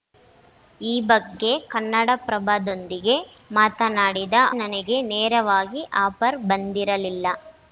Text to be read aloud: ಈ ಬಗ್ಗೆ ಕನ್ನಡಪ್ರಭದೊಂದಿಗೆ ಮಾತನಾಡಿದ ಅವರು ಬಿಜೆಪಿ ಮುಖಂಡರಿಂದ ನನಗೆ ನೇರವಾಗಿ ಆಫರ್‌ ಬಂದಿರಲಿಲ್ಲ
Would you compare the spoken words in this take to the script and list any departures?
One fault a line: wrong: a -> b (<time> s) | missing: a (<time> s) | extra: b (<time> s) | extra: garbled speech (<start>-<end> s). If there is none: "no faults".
missing: ಅವರು ಬಿಜೆಪಿ ಮುಖಂಡರಿಂದ (4.3 s)